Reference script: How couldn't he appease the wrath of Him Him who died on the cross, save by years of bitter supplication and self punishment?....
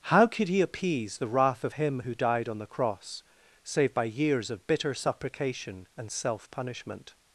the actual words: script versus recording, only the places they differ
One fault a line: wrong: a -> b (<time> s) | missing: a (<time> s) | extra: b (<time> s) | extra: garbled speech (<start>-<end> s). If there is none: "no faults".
wrong: couldn't -> could (0.3 s)
missing: Him (2.0 s)